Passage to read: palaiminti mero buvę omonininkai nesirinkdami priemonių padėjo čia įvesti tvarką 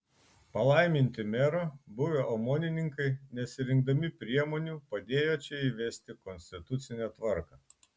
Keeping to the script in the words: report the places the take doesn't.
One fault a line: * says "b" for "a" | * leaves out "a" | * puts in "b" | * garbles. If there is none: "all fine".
* puts in "konstitucinę"